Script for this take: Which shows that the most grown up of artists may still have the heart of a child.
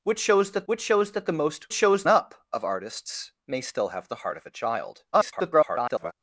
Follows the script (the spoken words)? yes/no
no